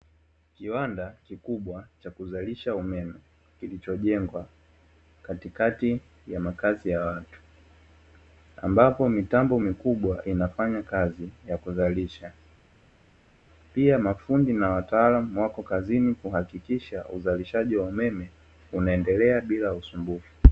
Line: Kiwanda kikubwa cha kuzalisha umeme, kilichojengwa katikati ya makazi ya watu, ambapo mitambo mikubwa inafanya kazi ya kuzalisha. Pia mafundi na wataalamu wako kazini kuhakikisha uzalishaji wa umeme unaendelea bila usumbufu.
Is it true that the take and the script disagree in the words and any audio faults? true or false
false